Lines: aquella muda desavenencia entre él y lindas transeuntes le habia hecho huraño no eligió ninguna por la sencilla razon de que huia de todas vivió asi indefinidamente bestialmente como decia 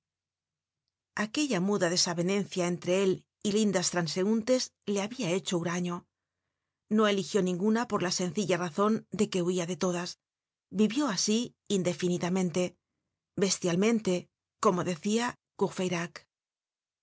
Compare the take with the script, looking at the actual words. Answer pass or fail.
pass